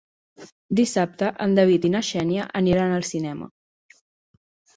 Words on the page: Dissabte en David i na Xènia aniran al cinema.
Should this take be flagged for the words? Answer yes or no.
no